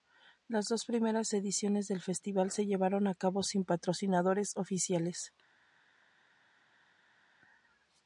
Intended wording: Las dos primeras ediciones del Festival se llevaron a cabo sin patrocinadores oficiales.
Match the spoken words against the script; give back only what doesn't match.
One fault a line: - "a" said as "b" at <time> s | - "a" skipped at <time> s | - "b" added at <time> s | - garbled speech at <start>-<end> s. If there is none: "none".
none